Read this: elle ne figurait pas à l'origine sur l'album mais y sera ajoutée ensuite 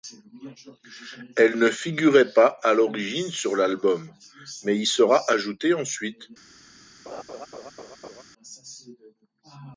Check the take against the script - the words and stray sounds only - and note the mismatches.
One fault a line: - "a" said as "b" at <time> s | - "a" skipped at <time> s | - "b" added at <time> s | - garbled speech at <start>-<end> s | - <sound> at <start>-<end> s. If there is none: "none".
- laugh at 7.1-8.2 s